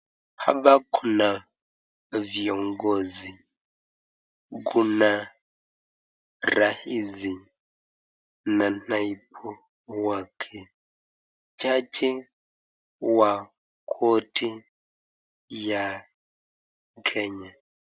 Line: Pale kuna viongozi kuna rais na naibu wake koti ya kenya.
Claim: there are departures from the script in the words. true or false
true